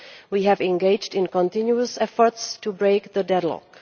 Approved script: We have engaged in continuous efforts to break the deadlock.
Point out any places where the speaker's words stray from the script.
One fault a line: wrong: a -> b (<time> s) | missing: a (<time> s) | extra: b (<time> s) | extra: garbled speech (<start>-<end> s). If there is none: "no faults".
no faults